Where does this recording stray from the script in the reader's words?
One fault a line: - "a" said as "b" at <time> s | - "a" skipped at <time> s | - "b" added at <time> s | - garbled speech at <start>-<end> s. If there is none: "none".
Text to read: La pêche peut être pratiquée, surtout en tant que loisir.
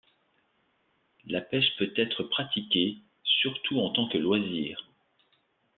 none